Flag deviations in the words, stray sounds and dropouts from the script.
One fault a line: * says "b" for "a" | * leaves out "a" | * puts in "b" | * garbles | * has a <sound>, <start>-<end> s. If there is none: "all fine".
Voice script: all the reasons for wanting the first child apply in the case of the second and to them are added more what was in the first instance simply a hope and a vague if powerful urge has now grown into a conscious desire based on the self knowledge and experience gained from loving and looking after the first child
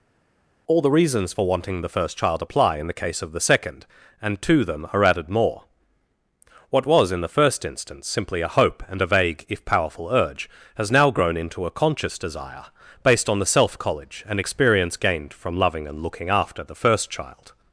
* says "college" for "knowledge"